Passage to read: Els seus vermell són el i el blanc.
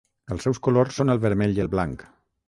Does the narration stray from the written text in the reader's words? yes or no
yes